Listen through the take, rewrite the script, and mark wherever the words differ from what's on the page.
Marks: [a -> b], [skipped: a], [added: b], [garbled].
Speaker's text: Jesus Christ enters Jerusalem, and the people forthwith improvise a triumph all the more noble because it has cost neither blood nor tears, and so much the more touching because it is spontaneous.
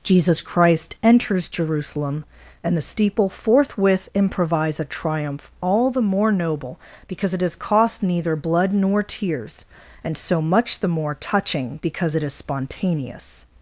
Jesus Christ enters Jerusalem, and the [people -> steeple] forthwith improvise a triumph all the more noble because it has cost neither blood nor tears, and so much the more touching because it is spontaneous.